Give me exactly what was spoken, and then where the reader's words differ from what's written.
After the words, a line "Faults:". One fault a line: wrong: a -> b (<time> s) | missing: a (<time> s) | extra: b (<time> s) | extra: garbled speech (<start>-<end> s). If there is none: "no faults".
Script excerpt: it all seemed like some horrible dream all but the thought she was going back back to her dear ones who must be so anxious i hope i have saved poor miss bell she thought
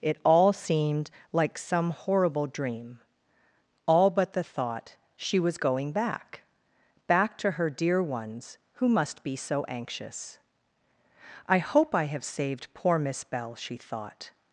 it all seemed like some horrible dream all but the thought she was going back back to her dear ones who must be so anxious i hope i have saved poor miss bell she thought
Faults:
no faults